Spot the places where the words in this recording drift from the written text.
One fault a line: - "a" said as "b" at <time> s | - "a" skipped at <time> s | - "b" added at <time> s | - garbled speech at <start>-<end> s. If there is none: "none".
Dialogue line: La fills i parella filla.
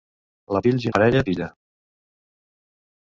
none